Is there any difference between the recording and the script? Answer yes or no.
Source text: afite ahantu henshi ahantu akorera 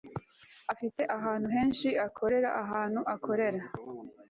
yes